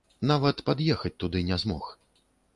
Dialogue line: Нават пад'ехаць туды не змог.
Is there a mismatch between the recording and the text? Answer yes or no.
no